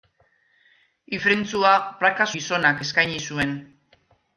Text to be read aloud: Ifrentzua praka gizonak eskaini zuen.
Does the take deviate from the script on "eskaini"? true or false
false